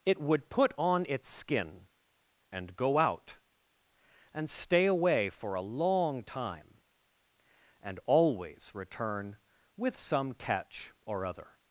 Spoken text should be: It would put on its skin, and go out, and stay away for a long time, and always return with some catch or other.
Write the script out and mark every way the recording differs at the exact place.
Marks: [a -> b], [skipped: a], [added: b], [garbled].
It would put on its skin, and go out, and stay away for a long time, and always return with some catch or other.